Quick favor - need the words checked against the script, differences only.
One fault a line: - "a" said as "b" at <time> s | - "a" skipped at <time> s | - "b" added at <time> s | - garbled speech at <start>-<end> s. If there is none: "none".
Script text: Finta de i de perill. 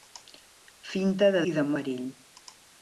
none